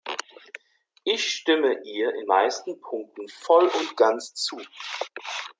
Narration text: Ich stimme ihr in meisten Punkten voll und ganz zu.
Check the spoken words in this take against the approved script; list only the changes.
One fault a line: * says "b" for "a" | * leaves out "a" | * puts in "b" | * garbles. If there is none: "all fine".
all fine